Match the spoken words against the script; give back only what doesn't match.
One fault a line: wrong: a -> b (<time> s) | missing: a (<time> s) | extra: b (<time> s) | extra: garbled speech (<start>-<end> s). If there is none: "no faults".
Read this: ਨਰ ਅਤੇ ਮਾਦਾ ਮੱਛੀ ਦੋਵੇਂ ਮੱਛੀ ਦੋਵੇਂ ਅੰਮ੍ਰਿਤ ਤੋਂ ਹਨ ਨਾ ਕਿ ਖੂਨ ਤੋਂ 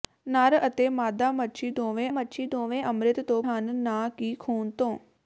no faults